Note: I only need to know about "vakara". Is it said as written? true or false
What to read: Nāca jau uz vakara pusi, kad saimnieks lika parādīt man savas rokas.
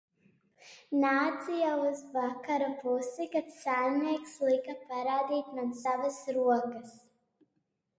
true